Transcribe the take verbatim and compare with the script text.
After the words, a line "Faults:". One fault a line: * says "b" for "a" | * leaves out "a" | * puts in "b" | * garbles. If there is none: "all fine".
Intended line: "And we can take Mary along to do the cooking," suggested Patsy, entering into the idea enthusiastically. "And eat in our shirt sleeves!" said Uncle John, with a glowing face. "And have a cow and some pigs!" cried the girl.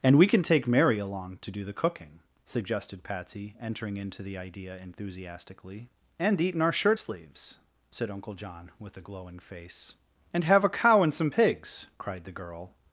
"And we can take Mary along to do the cooking," suggested Patsy, entering into the idea enthusiastically. "And eat in our shirt sleeves!" said Uncle John, with a glowing face. "And have a cow and some pigs!" cried the girl.
Faults:
all fine